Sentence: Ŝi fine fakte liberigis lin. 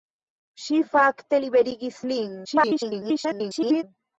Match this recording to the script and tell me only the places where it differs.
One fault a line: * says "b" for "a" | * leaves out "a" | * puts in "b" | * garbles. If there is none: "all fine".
* leaves out "fine"
* garbles